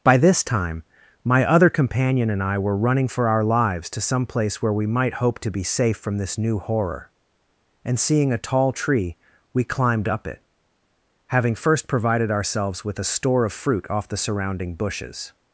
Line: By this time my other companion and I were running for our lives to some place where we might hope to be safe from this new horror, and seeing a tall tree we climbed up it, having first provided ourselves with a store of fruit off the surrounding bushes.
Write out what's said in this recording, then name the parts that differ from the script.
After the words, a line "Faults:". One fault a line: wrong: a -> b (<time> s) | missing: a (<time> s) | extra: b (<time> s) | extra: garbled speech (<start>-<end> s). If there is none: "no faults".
By this time my other companion and I were running for our lives to some place where we might hope to be safe from this new horror, and seeing a tall tree we climbed up it, having first provided ourselves with a store of fruit off the surrounding bushes.
Faults:
no faults